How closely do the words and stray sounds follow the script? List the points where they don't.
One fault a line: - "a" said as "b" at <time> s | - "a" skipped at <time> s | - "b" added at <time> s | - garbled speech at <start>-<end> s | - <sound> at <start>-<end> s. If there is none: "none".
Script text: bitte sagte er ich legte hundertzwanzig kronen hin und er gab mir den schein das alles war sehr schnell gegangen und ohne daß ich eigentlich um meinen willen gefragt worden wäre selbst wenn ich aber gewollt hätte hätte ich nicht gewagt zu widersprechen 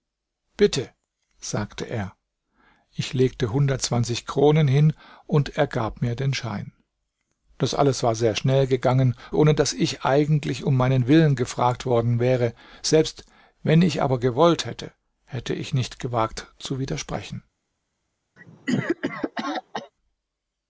- "und" skipped at 9.2 s
- cough at 18.4-19.9 s